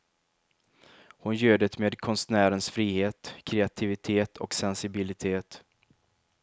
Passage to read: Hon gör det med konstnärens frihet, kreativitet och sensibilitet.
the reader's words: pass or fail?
pass